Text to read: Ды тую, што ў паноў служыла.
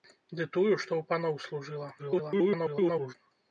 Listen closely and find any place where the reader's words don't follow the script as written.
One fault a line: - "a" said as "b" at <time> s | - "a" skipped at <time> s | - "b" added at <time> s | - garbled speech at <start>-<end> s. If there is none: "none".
- garbled speech at 2.0-3.1 s